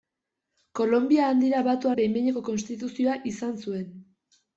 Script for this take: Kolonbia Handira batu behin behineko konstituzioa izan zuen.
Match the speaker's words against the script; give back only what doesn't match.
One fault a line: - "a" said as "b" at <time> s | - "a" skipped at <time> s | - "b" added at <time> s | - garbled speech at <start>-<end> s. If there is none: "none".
none